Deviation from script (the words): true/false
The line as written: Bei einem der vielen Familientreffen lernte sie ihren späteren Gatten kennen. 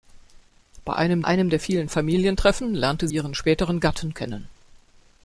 true